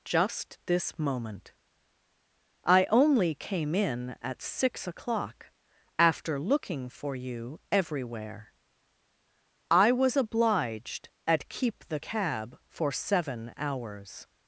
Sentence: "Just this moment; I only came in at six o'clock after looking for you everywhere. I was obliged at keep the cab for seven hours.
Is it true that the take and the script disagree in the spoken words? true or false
false